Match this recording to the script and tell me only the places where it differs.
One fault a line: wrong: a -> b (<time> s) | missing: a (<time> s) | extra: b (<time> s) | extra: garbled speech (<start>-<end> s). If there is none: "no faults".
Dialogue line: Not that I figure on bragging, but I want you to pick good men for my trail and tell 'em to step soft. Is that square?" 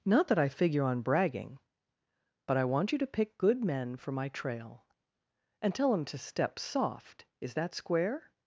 no faults